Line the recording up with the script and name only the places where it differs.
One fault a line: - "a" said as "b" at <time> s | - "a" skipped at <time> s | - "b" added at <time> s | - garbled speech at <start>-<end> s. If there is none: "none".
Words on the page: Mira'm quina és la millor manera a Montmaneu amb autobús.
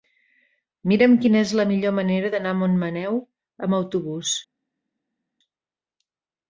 - "d'anar" added at 2.3 s